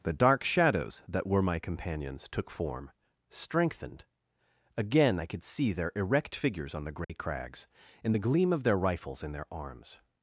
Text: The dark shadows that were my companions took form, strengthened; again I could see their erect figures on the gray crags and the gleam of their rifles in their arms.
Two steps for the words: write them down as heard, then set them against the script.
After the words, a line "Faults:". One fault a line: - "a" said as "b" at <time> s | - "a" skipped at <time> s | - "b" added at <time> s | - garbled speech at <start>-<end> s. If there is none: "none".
The dark shadows that were my companions took form, strengthened; again I could see their erect figures on the gray crags and the gleam of their rifles in their arms.
Faults:
none